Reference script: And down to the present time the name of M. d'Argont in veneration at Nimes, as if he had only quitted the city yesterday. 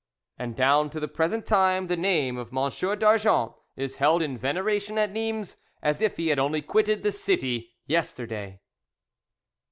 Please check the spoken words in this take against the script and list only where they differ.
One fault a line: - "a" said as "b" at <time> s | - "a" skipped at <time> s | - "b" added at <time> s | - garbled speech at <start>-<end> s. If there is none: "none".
- "is held" added at 3.8 s